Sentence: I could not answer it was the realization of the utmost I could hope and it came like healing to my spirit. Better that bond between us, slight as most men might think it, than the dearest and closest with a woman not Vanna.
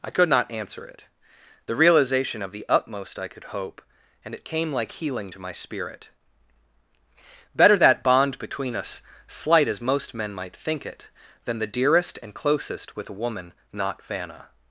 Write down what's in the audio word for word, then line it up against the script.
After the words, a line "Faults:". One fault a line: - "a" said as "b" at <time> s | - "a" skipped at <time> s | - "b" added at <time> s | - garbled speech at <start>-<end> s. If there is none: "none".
I could not answer it the realization of the utmost I could hope and it came like healing to my spirit. Better that bond between us, slight as most men might think it, than the dearest and closest with a woman not Vanna.
Faults:
- "was" skipped at 1.1 s